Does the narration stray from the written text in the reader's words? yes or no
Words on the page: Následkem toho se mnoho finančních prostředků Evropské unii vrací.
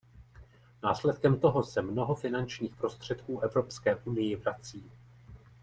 no